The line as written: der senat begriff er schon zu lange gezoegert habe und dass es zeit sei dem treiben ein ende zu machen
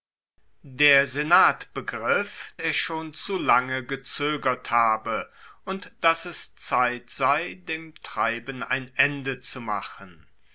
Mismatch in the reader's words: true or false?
false